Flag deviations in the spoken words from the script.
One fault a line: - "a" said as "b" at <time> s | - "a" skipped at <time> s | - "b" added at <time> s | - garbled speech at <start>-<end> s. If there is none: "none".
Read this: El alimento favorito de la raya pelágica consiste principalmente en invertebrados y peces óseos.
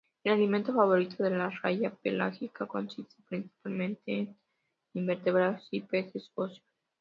none